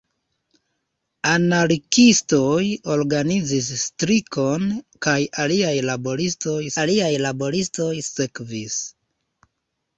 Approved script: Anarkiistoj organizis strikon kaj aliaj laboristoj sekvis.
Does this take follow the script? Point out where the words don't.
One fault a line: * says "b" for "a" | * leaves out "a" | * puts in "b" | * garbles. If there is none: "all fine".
* puts in "aliaj laboristoj"